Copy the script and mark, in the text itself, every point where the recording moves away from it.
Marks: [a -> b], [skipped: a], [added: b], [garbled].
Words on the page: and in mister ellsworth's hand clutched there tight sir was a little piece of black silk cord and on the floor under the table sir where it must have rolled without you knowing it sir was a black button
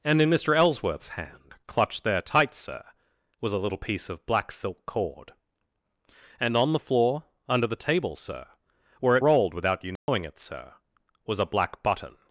and in mister ellsworth's hand clutched there tight sir was a little piece of black silk cord and on the floor under the table sir where it [skipped: must have] rolled without you knowing it sir was a black button